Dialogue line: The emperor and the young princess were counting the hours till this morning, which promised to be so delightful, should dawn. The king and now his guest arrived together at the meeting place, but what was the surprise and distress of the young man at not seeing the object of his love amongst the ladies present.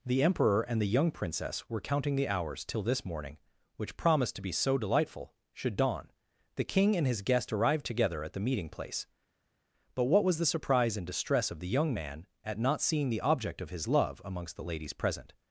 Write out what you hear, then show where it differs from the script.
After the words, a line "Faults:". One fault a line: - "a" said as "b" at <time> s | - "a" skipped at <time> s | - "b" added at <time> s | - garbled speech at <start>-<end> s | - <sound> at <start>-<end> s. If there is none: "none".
The emperor and the young princess were counting the hours till this morning, which promised to be so delightful, should dawn. The king and his guest arrived together at the meeting place, but what was the surprise and distress of the young man at not seeing the object of his love amongst the ladies present.
Faults:
- "now" skipped at 7.0 s